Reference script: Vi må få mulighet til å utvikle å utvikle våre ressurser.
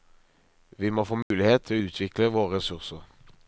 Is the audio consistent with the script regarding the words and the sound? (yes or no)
no